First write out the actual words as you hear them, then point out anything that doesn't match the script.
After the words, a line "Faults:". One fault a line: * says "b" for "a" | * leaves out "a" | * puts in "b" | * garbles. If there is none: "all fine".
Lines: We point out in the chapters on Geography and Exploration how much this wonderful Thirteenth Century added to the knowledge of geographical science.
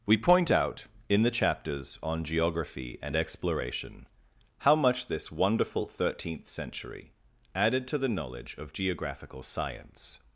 We point out in the chapters on Geography and Exploration how much this wonderful Thirteenth Century added to the knowledge of geographical science.
Faults:
all fine